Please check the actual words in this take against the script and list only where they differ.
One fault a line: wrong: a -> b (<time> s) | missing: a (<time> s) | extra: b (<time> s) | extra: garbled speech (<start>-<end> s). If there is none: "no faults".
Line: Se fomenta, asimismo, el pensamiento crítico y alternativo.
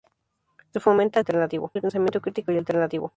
wrong: asimismo -> alternativo (1.2 s)